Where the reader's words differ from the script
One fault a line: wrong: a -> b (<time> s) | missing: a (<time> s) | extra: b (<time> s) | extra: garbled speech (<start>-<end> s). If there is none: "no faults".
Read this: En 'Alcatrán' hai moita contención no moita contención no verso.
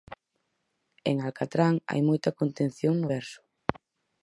missing: moita contención no (3.1 s)